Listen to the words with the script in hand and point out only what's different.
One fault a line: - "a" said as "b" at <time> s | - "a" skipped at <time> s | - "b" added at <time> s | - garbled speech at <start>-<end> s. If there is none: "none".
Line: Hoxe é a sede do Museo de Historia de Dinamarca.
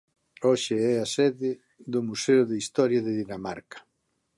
none